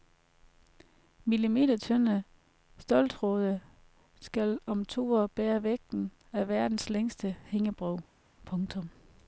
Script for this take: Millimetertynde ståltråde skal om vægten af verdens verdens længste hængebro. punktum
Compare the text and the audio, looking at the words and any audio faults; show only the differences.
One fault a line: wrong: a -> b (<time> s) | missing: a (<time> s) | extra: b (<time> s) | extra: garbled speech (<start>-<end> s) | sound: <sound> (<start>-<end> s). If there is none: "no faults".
extra: to år bære (4.9 s)
missing: verdens (6.9 s)